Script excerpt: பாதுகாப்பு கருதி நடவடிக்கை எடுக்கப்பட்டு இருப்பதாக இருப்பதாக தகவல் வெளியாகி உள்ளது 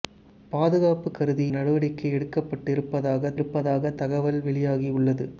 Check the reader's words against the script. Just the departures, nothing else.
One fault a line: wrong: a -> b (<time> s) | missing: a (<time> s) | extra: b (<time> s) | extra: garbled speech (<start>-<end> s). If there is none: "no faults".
no faults